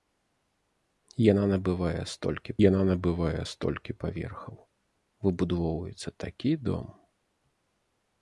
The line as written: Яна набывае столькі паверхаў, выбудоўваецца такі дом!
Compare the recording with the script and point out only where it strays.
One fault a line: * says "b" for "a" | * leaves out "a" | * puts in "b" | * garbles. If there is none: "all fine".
* puts in "яна набывае столькі"